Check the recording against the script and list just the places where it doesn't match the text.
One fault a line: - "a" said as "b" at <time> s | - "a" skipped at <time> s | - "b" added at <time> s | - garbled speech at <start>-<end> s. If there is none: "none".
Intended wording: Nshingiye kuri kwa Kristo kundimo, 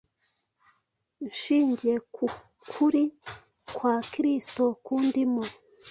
- "ku" added at 2.1 s